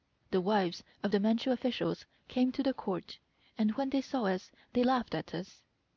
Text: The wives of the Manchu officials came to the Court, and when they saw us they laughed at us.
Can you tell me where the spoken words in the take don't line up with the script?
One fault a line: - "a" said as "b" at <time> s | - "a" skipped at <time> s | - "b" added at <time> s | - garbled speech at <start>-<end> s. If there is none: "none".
none